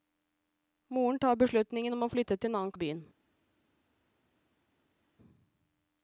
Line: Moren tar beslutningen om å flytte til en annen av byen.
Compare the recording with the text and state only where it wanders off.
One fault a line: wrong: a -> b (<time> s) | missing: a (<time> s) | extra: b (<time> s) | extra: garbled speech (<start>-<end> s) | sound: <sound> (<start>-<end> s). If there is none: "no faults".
no faults